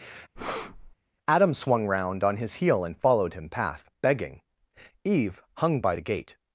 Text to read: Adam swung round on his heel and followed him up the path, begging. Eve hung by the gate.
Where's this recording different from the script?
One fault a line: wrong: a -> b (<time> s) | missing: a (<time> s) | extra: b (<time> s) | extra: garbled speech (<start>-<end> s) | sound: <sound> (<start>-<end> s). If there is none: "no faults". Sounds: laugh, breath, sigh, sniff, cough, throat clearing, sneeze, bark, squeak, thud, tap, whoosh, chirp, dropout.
sound: breath (0.4-1.0 s)
missing: up the (3.5 s)